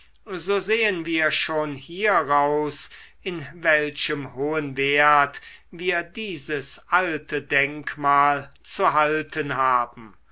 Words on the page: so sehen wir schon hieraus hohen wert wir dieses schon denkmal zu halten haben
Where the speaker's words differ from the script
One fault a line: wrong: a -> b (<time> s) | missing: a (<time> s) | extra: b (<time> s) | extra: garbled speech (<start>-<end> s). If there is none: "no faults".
extra: in welchem (3.2 s)
wrong: schon -> alte (6.9 s)